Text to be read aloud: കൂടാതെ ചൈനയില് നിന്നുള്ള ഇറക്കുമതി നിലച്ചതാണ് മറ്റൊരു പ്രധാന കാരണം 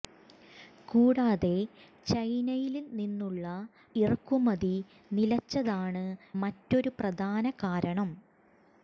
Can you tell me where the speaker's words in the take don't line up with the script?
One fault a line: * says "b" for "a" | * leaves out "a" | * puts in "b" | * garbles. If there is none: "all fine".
all fine